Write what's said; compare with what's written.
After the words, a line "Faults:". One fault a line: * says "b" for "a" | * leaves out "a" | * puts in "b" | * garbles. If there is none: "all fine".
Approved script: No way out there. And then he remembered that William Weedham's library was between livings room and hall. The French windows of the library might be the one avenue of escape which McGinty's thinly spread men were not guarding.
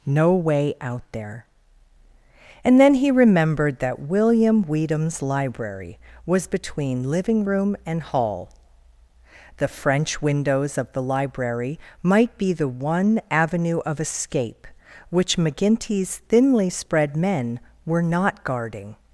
No way out there. And then he remembered that William Weedham's library was between living room and hall. The French windows of the library might be the one avenue of escape which McGinty's thinly spread men were not guarding.
Faults:
* says "living" for "livings"